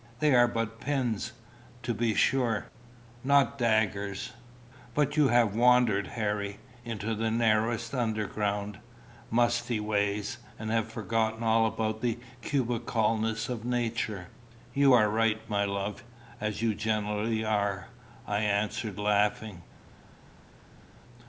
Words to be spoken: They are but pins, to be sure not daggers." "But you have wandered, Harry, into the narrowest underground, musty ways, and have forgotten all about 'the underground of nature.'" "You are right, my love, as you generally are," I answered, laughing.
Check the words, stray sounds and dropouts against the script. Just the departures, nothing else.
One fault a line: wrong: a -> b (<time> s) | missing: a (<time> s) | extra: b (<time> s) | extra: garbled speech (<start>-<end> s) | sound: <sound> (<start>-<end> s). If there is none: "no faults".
wrong: underground -> cubicalness (12.4 s)